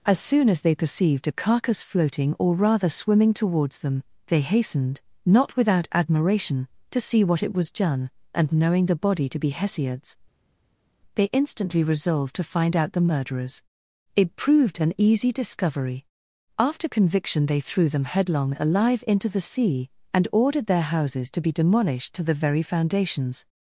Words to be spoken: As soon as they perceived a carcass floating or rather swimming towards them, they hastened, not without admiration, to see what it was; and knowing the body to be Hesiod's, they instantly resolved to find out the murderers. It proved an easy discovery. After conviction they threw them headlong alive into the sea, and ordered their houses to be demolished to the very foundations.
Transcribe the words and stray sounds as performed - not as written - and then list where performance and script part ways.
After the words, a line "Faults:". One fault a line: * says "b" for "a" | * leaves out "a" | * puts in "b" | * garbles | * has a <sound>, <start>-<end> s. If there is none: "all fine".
As soon as they perceived a carcass floating or rather swimming towards them, they hastened, not without admiration, to see what it was; done and knowing the body to be Hesiod's, they instantly resolved to find out the murderers. It proved an easy discovery. After conviction they threw them headlong alive into the sea, and ordered their houses to be demolished to the very foundations.
Faults:
* puts in "done"